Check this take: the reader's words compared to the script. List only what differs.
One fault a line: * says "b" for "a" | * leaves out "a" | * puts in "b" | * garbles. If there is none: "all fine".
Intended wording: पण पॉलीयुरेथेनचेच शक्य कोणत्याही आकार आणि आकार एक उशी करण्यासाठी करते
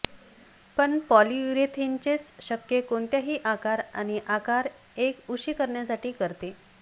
all fine